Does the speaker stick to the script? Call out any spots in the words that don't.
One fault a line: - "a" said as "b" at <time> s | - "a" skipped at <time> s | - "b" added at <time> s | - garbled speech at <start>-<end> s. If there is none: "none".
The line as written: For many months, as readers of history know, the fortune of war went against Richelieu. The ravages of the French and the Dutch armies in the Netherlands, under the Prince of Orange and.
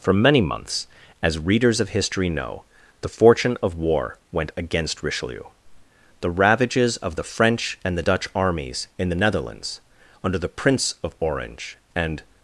none